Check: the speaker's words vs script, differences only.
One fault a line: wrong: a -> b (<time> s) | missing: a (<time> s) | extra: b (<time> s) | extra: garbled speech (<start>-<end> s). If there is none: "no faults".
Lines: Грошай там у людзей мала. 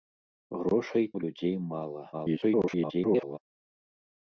missing: там (1.1 s)
extra: garbled speech (2.1-3.4 s)